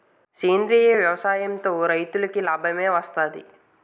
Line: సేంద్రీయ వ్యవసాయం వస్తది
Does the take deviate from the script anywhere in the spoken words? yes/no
yes